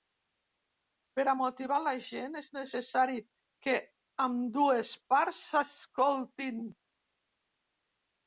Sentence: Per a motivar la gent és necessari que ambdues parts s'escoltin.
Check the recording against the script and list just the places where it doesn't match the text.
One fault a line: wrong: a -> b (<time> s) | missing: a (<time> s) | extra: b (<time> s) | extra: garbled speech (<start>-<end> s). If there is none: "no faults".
no faults